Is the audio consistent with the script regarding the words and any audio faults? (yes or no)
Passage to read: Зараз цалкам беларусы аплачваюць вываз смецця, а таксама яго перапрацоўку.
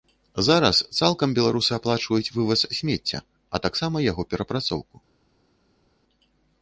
yes